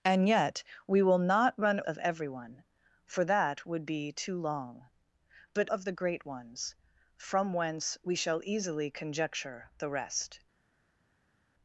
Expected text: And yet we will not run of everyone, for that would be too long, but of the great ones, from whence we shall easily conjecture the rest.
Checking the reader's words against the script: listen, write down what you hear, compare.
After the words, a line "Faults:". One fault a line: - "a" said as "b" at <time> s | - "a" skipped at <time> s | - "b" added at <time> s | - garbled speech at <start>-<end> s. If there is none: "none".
And yet we will not run of everyone, for that would be too long, but of the great ones, from whence we shall easily conjecture the rest.
Faults:
none